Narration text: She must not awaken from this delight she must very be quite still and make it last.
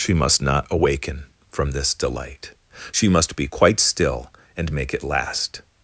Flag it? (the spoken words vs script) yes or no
yes